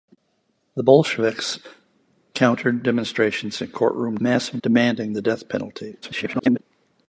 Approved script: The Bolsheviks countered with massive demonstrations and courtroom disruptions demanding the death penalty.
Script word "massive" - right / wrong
wrong